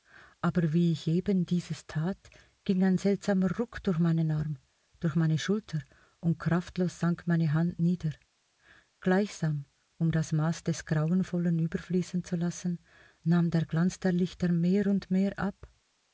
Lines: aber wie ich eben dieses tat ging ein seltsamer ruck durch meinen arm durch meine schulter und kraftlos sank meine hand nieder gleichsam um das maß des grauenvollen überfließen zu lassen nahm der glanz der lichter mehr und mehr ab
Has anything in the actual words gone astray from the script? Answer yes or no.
no